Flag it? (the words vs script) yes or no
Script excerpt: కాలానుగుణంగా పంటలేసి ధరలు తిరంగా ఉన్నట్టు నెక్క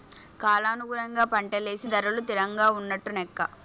no